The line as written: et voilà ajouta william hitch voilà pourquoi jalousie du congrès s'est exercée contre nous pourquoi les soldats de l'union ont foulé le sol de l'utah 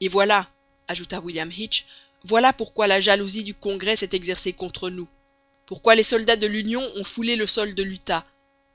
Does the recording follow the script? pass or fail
fail